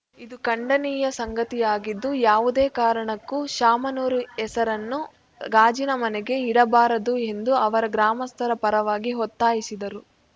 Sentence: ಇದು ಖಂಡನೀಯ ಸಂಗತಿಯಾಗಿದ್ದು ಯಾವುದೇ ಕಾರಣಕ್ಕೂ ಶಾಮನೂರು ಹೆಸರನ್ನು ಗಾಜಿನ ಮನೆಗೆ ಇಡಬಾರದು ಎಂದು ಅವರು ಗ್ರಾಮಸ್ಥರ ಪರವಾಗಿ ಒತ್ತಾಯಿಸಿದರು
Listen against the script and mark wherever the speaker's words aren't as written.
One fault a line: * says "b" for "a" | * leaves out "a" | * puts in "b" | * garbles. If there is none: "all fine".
all fine